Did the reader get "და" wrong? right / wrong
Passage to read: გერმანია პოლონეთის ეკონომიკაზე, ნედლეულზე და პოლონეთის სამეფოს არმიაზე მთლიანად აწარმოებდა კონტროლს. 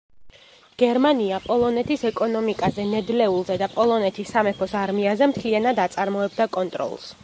right